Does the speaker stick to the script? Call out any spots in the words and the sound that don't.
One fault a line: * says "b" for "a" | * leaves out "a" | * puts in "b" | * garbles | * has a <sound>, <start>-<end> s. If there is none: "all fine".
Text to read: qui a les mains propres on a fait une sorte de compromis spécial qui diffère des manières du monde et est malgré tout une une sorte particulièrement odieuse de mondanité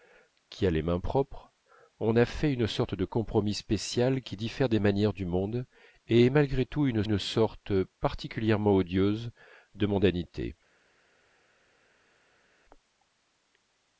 all fine